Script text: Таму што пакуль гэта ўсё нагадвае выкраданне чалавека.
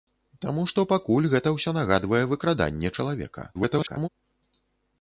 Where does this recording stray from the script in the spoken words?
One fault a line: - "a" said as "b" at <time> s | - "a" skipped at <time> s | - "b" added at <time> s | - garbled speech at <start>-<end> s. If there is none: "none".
- garbled speech at 3.5-4.1 s